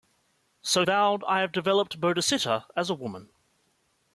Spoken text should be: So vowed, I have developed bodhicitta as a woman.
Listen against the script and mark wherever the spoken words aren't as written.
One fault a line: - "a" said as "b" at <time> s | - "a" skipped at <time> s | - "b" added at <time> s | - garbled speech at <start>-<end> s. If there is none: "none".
none